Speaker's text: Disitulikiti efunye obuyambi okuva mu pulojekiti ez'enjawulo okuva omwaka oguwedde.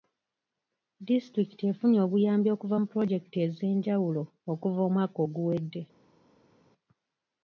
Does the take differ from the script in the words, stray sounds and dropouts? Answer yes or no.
no